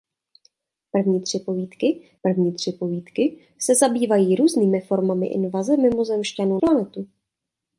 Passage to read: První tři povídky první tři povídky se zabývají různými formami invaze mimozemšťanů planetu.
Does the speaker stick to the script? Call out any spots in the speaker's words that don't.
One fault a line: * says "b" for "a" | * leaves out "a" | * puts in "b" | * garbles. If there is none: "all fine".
all fine